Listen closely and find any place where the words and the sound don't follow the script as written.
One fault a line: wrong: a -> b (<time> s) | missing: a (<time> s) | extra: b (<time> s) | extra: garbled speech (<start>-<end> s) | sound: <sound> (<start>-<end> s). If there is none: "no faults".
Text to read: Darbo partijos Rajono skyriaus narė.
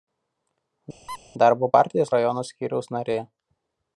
sound: squeak (1.1-1.2 s)